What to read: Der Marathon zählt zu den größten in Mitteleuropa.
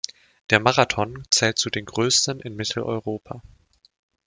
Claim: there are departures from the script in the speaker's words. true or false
false